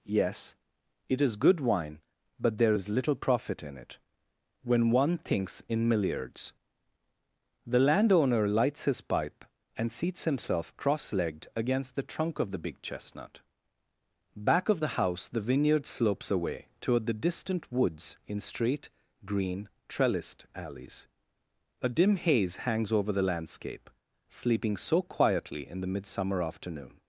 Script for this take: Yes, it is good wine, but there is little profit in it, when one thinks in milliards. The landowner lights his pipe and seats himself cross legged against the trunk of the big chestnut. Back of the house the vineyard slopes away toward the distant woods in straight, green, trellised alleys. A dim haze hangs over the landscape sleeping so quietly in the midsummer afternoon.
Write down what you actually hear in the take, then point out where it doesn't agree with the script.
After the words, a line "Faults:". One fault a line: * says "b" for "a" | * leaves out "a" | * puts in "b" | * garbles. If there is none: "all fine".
Yes, it is good wine, but there is little profit in it, when one thinks in milliards. The landowner lights his pipe and seats himself cross legged against the trunk of the big chestnut. Back of the house the vineyard slopes away toward the distant woods in straight, green, trellised alleys. A dim haze hangs over the landscape sleeping so quietly in the midsummer afternoon.
Faults:
all fine